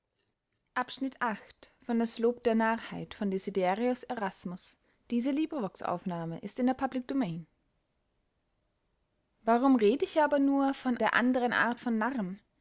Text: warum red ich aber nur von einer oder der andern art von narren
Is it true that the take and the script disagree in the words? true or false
true